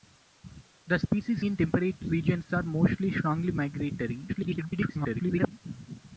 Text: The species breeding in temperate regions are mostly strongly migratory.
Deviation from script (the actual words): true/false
true